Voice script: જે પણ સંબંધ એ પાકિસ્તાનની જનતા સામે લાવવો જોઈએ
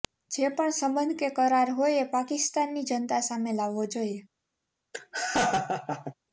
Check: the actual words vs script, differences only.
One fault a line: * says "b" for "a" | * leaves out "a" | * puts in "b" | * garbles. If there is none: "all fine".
* puts in "કે કરાર હોય"